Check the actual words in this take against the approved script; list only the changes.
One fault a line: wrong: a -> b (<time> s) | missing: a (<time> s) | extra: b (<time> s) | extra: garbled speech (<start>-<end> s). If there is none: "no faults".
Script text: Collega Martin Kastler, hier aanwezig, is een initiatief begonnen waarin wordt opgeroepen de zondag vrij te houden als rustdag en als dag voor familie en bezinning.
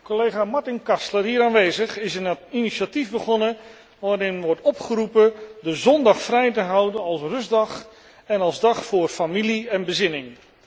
no faults